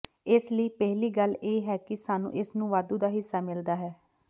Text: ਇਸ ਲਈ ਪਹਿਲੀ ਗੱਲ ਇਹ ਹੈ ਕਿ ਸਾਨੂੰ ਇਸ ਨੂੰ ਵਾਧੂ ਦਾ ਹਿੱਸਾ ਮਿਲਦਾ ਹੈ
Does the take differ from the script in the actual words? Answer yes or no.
no